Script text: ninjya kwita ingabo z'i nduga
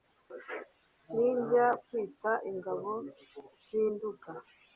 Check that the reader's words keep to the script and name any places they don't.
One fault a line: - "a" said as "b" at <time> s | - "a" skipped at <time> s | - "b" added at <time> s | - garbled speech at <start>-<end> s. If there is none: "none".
none